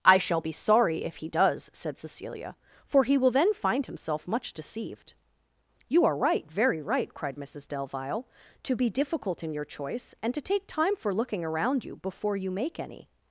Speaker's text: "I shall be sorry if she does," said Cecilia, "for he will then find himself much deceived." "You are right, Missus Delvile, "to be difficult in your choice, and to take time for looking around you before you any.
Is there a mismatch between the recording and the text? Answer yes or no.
yes